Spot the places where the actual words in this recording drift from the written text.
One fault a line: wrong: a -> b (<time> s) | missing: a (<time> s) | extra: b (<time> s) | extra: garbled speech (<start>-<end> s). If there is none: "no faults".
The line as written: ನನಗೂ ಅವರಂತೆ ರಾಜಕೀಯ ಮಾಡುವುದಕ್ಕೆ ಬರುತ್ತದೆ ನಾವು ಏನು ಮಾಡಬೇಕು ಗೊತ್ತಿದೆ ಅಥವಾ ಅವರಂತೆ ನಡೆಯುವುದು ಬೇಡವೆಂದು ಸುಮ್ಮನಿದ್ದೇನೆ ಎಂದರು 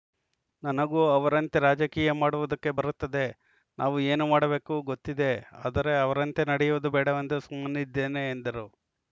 wrong: ಅಥವಾ -> ಆದರೆ (5.6 s)